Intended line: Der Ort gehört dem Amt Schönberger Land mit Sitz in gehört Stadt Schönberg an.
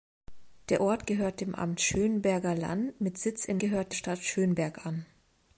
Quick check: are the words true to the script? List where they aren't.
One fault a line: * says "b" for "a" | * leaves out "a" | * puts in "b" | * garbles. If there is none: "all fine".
all fine